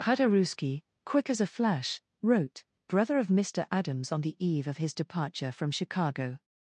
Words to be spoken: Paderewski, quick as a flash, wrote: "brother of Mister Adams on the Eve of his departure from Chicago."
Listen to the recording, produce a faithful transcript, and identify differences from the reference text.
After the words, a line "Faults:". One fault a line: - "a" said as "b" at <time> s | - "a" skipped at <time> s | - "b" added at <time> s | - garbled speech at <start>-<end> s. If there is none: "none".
Paderewski, quick as a flash, wrote: "brother of Mister Adams on the Eve of his departure from Chicago."
Faults:
none